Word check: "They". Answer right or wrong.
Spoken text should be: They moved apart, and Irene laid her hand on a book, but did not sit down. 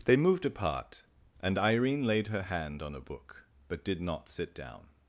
right